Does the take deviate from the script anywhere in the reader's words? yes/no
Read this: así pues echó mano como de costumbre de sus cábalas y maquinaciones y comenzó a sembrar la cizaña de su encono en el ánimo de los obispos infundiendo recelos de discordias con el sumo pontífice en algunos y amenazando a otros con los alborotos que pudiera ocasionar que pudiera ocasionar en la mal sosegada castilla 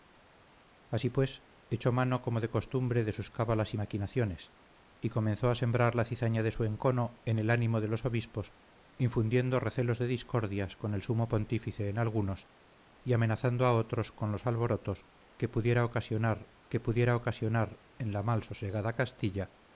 no